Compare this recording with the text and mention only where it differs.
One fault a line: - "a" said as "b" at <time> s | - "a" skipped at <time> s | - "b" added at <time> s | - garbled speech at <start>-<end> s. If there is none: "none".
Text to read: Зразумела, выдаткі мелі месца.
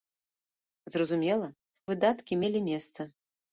none